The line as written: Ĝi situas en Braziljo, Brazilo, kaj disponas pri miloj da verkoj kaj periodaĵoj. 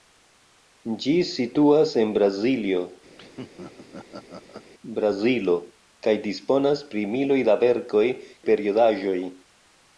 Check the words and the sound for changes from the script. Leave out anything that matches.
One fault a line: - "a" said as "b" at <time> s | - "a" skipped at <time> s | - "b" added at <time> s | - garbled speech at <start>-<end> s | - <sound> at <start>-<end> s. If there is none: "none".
- laugh at 3.2-4.7 s
- "kaj" skipped at 8.0 s